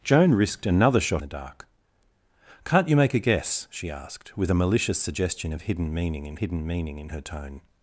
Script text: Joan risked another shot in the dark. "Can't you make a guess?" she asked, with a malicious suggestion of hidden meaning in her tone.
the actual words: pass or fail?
fail